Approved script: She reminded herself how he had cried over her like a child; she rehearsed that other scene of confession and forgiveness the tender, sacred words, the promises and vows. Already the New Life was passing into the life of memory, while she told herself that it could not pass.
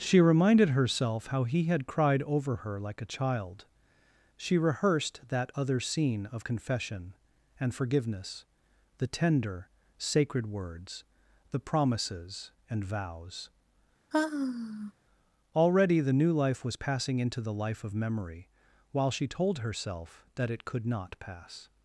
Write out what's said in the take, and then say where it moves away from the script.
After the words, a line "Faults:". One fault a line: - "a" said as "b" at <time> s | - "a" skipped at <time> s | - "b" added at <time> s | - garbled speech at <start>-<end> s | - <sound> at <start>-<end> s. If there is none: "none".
She reminded herself how he had cried over her like a child; she rehearsed that other scene of confession and forgiveness the tender, sacred words, the promises and vows. Already the New Life was passing into the life of memory, while she told herself that it could not pass.
Faults:
- sigh at 14.1-14.9 s